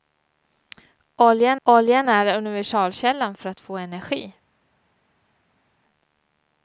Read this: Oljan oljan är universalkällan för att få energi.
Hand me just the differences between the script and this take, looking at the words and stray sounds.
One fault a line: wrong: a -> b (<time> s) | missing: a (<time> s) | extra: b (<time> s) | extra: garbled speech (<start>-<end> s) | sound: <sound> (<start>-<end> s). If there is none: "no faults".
no faults